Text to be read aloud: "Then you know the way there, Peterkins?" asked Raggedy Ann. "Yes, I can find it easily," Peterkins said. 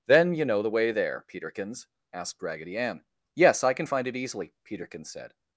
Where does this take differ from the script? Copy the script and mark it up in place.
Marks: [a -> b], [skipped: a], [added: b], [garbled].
"Then you know the way there, Peterkins?" asked Raggedy Ann. "Yes, I can find it easily," Peterkins said.